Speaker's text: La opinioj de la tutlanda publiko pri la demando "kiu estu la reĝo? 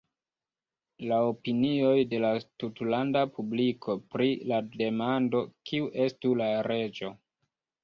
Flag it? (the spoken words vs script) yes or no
no